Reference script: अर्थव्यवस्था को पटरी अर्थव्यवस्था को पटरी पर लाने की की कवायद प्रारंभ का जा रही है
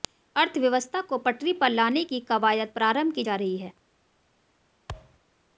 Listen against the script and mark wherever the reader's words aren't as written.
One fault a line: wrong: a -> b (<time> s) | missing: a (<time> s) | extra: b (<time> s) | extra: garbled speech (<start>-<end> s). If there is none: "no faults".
missing: अर्थव्यवस्था को पटरी (1.5 s)
missing: की (2.2 s)
wrong: का -> की (3.1 s)